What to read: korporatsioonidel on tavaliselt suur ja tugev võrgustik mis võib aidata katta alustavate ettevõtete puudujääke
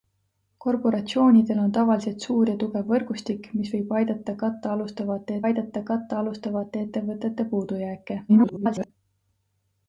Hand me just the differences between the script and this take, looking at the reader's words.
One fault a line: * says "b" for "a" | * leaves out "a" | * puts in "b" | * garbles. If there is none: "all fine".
* puts in "aidata katta alustavate"
* garbles